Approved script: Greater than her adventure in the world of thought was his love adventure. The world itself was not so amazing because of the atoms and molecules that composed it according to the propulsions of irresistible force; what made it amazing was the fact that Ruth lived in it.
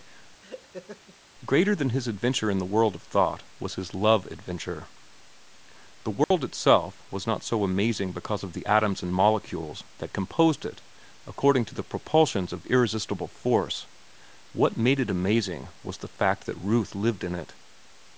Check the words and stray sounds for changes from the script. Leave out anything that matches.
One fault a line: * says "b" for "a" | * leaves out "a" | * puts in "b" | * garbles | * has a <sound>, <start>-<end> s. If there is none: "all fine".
* has a laugh, 0.4-1.2 s
* says "his" for "her"
* has a dropout, 6.2-6.3 s